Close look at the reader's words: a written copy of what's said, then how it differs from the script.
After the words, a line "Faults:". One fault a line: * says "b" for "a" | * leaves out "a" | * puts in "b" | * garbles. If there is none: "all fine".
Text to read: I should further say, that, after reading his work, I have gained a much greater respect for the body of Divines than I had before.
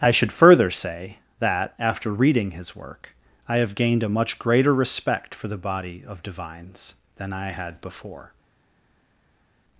I should further say, that, after reading his work, I have gained a much greater respect for the body of Divines than I had before.
Faults:
all fine